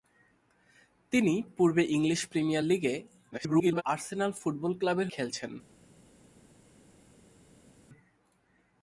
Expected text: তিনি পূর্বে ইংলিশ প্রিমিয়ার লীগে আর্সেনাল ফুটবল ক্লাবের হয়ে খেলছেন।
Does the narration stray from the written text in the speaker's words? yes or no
yes